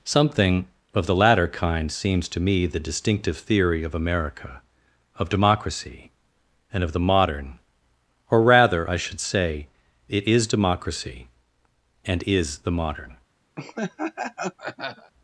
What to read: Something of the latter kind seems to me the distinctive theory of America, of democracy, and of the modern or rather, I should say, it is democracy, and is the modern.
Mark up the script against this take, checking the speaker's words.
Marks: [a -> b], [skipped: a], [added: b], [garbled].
Something of the latter kind seems to me the distinctive theory of America, of democracy, and of the modern or rather, I should say, it is democracy, and is the modern.